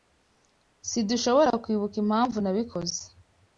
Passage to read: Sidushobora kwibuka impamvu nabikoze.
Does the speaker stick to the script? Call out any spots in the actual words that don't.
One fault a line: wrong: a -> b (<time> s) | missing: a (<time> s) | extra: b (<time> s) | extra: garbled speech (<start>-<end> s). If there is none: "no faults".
no faults